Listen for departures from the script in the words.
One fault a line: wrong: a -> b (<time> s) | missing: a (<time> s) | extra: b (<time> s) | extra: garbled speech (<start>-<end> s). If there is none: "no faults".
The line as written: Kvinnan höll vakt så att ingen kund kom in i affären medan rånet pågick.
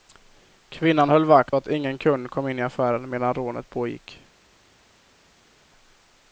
missing: så (1.6 s)